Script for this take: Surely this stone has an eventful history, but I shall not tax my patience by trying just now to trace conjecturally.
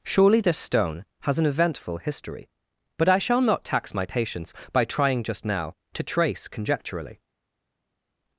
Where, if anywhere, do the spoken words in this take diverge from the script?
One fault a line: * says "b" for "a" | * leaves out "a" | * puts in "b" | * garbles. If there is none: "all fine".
all fine